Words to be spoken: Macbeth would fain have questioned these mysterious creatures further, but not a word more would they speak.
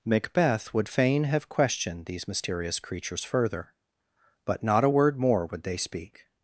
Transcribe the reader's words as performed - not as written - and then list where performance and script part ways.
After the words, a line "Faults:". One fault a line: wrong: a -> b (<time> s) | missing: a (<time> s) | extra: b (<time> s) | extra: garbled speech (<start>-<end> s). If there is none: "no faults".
Macbeth would fain have questioned these mysterious creatures further, but not a word more would they speak.
Faults:
no faults